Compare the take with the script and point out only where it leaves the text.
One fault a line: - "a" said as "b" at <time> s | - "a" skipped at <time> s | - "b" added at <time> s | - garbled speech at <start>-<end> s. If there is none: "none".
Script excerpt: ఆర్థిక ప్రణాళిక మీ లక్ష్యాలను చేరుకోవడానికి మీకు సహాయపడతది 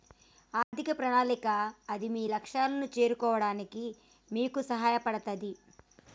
- "అది" added at 1.9 s